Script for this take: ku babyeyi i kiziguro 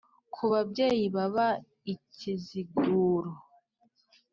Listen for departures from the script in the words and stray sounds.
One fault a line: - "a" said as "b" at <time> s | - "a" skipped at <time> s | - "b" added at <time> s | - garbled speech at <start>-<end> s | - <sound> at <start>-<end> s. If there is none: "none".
- "baba" added at 1.2 s